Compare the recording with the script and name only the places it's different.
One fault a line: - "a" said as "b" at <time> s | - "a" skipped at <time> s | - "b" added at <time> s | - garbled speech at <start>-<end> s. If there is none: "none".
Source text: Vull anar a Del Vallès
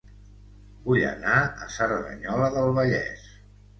- "Cerdanyola" added at 1.7 s